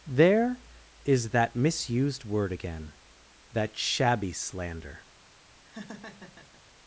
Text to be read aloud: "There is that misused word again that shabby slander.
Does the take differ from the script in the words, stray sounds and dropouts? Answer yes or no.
yes